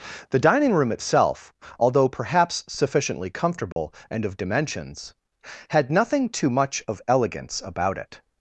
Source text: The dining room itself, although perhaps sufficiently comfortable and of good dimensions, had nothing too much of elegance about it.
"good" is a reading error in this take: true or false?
true